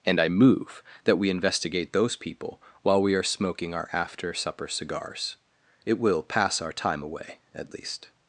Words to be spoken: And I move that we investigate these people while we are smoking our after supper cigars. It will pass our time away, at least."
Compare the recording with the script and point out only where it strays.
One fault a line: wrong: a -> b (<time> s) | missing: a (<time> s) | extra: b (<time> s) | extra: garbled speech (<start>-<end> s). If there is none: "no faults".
wrong: these -> those (1.9 s)